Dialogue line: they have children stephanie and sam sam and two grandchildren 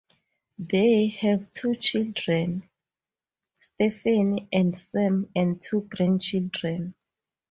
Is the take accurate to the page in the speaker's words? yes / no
no